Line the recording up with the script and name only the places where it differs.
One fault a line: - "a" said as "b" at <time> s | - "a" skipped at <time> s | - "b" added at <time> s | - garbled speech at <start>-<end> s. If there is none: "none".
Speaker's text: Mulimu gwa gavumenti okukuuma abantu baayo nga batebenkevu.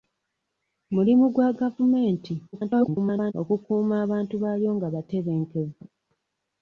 - garbled speech at 2.5-3.3 s